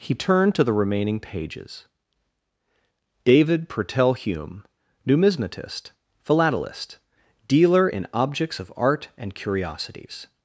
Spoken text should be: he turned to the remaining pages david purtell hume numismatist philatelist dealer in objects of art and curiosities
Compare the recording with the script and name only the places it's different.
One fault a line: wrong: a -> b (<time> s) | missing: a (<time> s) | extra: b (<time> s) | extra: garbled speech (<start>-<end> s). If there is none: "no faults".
no faults